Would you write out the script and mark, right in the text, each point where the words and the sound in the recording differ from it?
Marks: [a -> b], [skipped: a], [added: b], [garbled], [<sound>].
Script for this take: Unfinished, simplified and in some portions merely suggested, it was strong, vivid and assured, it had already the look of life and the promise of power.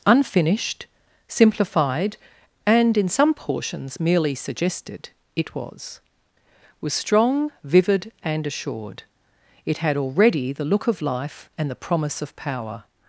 Unfinished, simplified and in some portions merely suggested, it was [added: was] strong, vivid and assured, it had already the look of life and the promise of power.